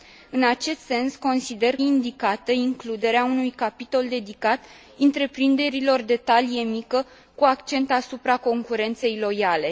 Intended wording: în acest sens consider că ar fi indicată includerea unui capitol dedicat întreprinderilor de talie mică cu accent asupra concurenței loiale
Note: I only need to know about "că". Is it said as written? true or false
false